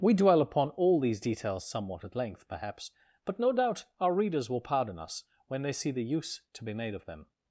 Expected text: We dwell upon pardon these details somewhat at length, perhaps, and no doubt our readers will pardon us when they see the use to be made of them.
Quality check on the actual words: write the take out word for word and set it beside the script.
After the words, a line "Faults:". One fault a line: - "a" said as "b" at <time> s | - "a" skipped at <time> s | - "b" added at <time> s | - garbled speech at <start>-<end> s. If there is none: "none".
We dwell upon all these details somewhat at length, perhaps, but no doubt our readers will pardon us when they see the use to be made of them.
Faults:
- "pardon" said as "all" at 0.7 s
- "and" said as "but" at 3.2 s